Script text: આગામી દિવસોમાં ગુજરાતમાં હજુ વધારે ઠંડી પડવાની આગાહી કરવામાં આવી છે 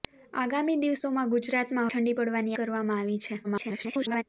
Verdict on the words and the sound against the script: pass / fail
fail